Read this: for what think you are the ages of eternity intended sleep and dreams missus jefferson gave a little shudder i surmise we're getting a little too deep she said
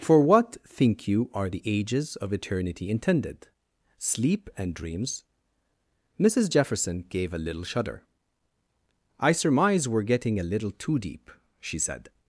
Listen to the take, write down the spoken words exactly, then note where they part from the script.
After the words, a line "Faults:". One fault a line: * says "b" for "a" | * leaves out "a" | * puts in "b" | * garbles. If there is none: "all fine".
for what think you are the ages of eternity intended sleep and dreams missus jefferson gave a little shudder i surmise we're getting a little too deep she said
Faults:
all fine